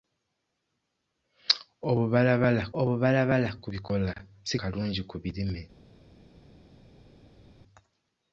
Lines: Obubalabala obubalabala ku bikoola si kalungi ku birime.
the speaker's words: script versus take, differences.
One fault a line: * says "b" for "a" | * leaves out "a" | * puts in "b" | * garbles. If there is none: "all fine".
all fine